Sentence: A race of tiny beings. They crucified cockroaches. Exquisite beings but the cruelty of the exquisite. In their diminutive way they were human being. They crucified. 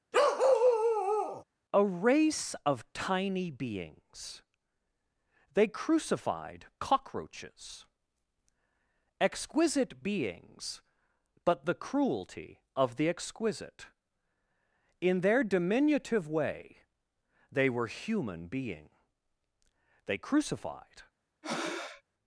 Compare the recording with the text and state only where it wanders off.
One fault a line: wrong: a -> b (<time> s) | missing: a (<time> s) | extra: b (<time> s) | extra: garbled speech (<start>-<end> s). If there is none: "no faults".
no faults